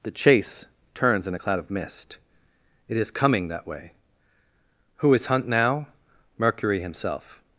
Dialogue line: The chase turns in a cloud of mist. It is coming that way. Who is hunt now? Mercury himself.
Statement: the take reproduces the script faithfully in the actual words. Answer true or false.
true